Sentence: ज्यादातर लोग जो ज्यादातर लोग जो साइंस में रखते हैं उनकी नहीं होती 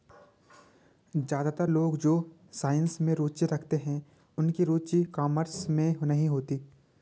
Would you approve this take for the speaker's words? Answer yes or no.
no